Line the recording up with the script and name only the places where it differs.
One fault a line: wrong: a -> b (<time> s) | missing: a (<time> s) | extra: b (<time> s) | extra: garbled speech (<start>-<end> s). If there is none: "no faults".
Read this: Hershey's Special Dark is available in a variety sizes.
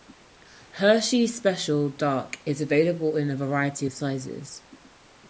extra: of (3.8 s)